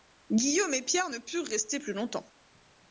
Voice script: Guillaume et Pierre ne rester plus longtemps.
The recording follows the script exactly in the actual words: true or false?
false